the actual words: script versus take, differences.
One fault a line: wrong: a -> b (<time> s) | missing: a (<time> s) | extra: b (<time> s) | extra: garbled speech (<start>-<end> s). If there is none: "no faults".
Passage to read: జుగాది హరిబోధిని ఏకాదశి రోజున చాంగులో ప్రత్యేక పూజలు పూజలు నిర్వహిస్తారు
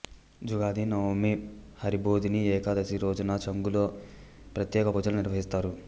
extra: నవమి (0.8 s)
missing: పూజలు (5.2 s)